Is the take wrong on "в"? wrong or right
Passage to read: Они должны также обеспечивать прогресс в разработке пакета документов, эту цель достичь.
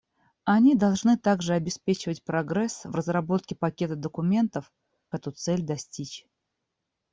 right